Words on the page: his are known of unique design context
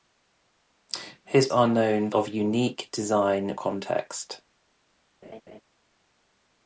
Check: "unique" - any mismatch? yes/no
no